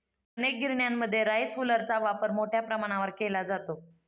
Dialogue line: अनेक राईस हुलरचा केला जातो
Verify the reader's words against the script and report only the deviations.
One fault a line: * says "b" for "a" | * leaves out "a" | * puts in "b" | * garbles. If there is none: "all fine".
* puts in "गिरण्यांमध्ये"
* puts in "वापर मोठ्या प्रमाणावर"